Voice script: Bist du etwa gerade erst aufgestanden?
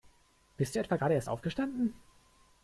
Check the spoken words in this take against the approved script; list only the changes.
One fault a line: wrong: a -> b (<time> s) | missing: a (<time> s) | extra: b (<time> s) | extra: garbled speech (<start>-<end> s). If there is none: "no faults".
no faults